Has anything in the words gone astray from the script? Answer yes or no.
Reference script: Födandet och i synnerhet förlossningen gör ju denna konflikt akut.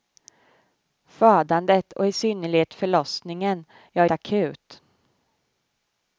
yes